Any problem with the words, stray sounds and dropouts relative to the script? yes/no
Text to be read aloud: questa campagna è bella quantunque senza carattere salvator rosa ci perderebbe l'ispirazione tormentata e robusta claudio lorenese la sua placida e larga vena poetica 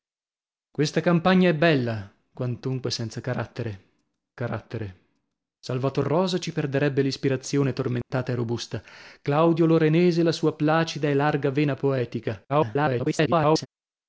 yes